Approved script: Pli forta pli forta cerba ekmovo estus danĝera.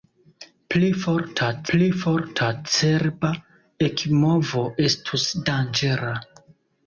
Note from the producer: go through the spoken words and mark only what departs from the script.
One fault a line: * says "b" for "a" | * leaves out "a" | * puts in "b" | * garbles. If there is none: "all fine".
all fine